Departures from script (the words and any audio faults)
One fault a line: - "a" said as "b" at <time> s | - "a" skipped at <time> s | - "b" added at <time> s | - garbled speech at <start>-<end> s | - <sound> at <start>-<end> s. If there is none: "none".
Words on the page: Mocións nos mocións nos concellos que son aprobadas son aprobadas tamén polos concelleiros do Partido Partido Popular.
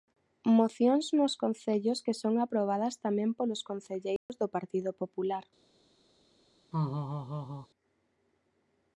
- "mocións nos" skipped at 1.3 s
- "son aprobadas" skipped at 3.0 s
- dropout at 4.2-4.3 s
- "Partido" skipped at 4.9 s
- laugh at 6.7-7.7 s